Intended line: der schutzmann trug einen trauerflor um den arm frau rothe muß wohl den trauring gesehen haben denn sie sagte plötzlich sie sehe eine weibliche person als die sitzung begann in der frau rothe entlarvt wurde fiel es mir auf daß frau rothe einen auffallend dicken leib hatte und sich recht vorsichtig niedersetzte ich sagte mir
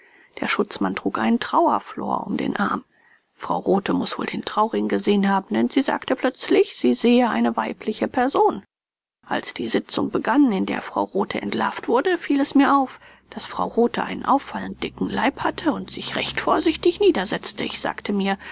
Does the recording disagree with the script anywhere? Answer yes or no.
no